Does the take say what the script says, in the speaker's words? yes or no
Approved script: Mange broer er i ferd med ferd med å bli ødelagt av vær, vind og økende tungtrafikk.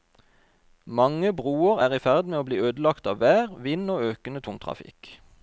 no